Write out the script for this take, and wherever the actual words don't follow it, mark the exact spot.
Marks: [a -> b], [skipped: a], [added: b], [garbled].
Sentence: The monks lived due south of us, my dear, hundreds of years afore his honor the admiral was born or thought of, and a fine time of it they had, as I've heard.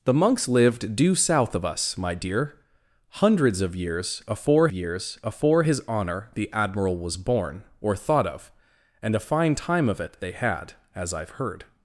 The monks lived due south of us, my dear, hundreds of years afore [added: years afore] his honor the admiral was born or thought of, and a fine time of it they had, as I've heard.